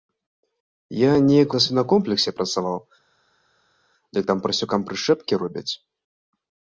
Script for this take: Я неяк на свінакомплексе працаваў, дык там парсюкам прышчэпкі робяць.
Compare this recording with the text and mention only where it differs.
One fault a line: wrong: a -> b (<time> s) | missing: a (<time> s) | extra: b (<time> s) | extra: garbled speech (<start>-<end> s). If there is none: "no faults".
no faults